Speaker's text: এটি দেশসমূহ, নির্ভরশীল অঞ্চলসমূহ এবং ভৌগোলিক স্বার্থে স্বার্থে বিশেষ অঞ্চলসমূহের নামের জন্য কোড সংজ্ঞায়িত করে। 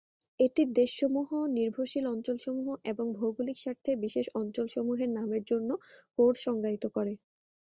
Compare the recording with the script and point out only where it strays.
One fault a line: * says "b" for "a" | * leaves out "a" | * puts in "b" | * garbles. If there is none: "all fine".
* leaves out "স্বার্থে"